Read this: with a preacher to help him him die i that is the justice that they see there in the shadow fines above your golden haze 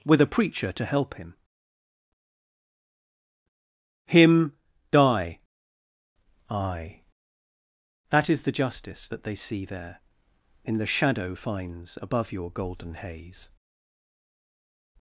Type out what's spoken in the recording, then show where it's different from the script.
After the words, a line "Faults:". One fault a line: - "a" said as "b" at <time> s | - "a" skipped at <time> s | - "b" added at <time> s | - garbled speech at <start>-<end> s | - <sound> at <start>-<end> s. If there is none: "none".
with a preacher to help him him die i that is the justice that they see there in the shadow fines above your golden haze
Faults:
none